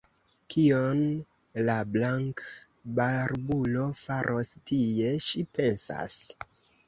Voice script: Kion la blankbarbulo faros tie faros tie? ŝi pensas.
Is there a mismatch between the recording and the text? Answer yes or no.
yes